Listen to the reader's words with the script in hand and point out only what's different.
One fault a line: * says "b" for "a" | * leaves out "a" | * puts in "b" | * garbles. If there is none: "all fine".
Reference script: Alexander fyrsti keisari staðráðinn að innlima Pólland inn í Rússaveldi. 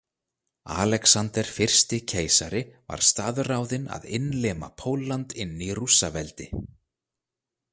* puts in "var"